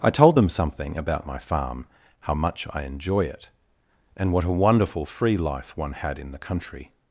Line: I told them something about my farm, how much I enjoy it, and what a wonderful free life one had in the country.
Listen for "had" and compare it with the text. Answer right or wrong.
right